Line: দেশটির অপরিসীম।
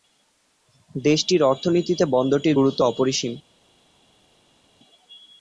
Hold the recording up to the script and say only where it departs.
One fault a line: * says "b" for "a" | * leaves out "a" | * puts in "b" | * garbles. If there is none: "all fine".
* puts in "অর্থনীতিতে বন্দরটির গুরুত্ব"